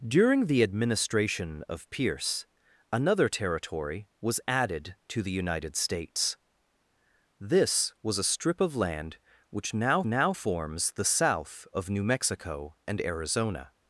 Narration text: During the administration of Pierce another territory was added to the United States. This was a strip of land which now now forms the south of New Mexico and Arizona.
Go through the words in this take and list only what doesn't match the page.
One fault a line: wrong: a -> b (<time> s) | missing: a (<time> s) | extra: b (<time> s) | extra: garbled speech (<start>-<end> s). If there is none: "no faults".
no faults